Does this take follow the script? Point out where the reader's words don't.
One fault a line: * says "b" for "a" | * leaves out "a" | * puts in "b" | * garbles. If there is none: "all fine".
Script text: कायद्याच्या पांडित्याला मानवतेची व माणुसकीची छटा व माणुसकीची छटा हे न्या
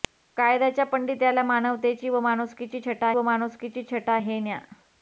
all fine